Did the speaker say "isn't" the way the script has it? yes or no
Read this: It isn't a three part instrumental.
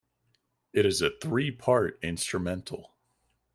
no